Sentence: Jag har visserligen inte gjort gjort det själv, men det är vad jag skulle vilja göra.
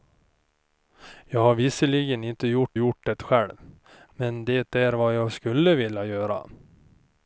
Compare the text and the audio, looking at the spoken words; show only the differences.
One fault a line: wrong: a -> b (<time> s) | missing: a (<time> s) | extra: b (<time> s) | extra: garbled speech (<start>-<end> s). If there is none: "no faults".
no faults